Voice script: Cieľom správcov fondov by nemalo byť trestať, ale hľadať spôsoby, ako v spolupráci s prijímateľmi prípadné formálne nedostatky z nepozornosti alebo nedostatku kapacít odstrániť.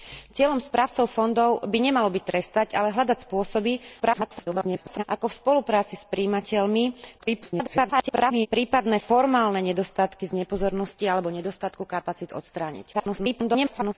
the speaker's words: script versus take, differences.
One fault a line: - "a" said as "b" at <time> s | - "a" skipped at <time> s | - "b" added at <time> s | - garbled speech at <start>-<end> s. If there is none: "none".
- garbled speech at 4.0-5.0 s
- garbled speech at 7.2-8.5 s
- garbled speech at 12.9-13.9 s